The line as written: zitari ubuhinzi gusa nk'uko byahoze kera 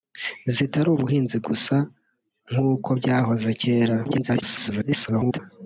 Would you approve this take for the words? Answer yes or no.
no